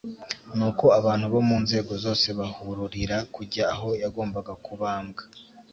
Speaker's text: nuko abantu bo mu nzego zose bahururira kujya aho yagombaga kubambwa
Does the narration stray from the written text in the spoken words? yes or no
no